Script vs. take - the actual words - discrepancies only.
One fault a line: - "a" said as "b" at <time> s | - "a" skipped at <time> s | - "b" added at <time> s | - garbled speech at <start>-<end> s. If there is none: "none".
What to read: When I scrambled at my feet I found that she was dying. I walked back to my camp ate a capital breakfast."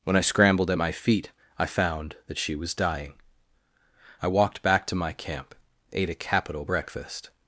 none